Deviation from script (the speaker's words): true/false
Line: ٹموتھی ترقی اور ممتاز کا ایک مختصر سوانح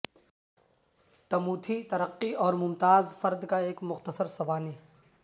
true